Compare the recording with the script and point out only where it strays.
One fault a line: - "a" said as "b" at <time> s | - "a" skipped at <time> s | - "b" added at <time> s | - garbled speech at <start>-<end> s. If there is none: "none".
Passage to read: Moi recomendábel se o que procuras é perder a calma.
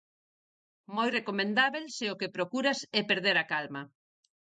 none